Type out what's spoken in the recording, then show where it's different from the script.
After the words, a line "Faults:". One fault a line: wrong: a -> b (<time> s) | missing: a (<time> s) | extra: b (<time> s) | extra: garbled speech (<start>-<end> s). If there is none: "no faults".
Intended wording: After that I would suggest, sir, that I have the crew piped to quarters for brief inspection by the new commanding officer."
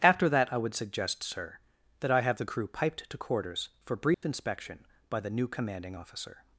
After that I would suggest, sir, that I have the crew piped to quarters for brief inspection by the new commanding officer."
Faults:
no faults